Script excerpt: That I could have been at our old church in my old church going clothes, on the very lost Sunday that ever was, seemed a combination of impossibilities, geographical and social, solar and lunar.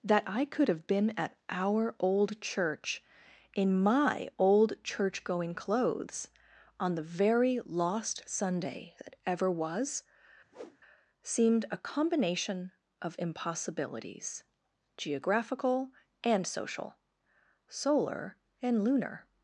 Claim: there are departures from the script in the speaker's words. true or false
false